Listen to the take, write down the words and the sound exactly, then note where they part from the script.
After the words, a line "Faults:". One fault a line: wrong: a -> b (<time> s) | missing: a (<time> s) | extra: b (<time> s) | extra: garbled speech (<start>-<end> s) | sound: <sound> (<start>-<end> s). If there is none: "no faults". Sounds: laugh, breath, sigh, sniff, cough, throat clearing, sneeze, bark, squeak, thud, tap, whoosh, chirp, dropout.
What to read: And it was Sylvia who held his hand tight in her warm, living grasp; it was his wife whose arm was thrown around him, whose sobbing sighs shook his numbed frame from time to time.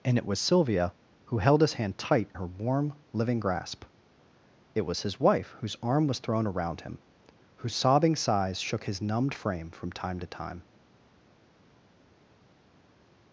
And it was Sylvia who held his hand tight her warm, living grasp; it was his wife whose arm was thrown around him, whose sobbing sighs shook his numbed frame from time to time.
Faults:
missing: in (2.3 s)